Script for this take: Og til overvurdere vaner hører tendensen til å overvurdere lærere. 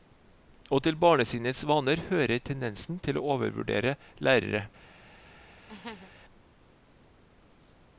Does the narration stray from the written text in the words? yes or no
yes